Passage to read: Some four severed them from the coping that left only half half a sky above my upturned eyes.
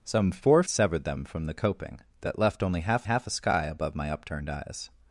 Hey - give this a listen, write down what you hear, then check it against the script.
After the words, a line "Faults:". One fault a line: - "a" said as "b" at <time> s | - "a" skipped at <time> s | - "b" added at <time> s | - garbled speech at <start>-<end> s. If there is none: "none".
Some four severed them from the coping that left only half half a sky above my upturned eyes.
Faults:
none